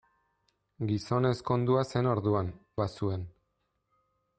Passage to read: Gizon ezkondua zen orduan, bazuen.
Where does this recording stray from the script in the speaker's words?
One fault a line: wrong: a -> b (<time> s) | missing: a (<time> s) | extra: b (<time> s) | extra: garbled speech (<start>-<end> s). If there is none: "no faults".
no faults